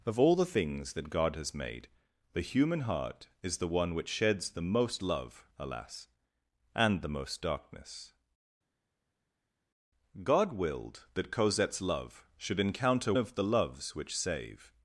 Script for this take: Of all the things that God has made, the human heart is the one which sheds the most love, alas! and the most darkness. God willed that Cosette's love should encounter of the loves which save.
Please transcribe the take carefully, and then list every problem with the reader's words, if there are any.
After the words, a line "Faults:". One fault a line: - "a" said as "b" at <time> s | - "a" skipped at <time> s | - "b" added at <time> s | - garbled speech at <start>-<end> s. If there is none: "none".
Of all the things that God has made, the human heart is the one which sheds the most love, alas! and the most darkness. God willed that Cosette's love should encounter of the loves which save.
Faults:
none